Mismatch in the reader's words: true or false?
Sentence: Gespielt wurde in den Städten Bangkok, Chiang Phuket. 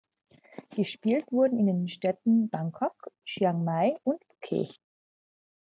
true